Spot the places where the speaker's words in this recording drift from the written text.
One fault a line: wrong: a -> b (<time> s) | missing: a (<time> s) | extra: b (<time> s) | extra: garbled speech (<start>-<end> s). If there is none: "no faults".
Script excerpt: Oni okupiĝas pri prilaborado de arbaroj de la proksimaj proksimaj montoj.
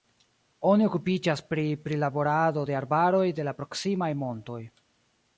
missing: proksimaj (4.1 s)